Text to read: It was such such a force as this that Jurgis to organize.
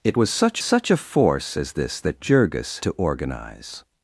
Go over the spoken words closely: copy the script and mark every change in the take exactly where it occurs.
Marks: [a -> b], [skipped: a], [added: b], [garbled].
It was such such a force as this that Jurgis to organize.